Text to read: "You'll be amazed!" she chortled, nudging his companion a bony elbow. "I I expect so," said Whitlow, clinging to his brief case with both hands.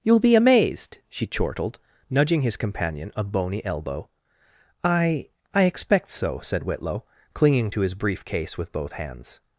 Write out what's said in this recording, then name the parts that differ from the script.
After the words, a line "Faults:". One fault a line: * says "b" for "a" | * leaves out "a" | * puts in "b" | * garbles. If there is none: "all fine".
"You'll be amazed!" she chortled, nudging his companion a bony elbow. "I I expect so," said Whitlow, clinging to his brief case with both hands.
Faults:
all fine